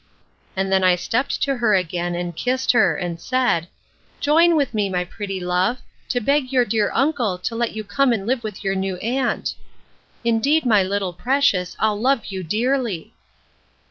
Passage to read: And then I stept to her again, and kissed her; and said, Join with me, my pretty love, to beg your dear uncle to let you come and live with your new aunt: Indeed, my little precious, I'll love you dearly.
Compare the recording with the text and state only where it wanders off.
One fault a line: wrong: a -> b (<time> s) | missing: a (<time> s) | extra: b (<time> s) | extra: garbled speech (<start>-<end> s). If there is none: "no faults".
no faults